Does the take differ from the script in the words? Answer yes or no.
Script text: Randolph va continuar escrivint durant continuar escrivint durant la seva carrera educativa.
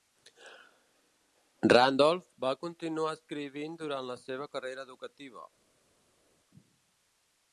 yes